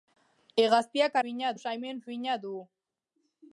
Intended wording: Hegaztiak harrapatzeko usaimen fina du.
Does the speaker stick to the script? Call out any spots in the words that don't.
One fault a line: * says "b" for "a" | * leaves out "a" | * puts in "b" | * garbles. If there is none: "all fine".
* says "fina" for "harrapatzeko"